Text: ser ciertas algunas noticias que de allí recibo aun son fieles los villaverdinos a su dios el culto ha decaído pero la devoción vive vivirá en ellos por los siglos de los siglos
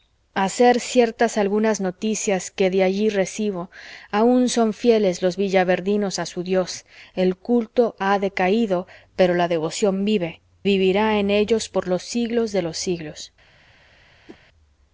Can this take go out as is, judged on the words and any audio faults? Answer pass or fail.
fail